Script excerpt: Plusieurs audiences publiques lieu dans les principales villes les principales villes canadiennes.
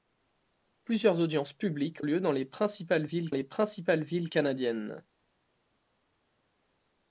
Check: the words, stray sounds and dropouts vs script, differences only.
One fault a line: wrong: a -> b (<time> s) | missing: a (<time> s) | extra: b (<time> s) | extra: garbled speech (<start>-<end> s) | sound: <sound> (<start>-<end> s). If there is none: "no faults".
no faults